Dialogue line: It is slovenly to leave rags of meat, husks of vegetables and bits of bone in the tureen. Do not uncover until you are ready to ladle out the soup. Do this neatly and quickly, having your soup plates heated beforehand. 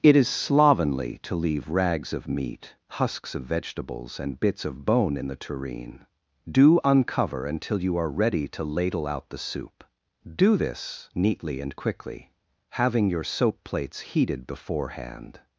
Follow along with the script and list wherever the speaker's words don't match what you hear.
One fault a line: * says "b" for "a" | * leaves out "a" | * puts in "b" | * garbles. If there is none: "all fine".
* leaves out "not"
* says "soap" for "soup"